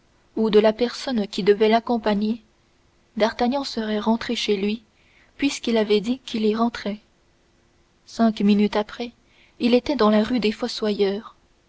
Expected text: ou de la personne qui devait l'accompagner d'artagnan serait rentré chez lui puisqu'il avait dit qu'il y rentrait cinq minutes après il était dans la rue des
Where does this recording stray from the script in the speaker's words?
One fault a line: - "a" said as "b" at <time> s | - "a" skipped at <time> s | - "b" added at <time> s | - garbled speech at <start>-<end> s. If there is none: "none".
none